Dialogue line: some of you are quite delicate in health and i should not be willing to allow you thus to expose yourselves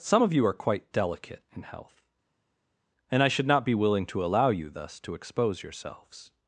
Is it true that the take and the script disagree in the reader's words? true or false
false